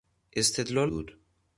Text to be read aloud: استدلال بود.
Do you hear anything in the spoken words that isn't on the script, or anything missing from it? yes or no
no